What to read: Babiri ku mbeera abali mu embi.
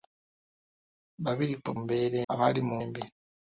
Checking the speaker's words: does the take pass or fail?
pass